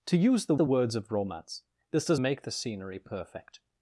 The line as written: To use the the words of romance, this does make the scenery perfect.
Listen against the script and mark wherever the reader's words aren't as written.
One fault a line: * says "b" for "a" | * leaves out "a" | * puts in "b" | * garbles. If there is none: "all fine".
all fine